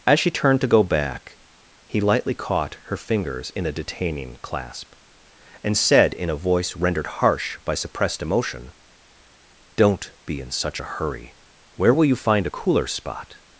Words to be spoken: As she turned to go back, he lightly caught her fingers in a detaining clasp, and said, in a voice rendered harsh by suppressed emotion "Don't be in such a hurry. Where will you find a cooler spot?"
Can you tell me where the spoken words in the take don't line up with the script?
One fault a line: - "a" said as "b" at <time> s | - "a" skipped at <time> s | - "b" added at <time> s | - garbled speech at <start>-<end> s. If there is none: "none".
none